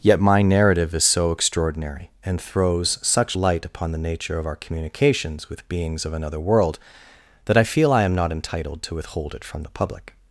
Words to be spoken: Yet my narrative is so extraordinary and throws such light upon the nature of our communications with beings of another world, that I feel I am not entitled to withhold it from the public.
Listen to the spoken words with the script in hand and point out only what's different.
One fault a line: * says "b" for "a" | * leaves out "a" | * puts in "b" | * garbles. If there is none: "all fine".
all fine